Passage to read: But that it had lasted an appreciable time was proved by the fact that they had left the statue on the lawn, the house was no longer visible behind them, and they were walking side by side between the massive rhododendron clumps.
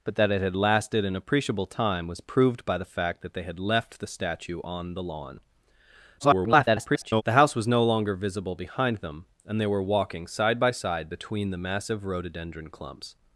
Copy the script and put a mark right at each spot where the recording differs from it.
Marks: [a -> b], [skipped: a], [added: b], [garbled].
But that it had lasted an appreciable time was proved by the fact that they had left the statue on the lawn, [garbled] the house was no longer visible behind them, and they were walking side by side between the massive rhododendron clumps.